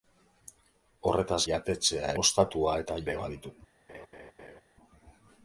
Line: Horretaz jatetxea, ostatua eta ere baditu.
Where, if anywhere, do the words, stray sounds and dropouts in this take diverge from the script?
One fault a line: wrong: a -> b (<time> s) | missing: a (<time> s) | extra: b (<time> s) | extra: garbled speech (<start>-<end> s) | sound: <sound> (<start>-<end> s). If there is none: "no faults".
sound: laugh (3.9-4.6 s)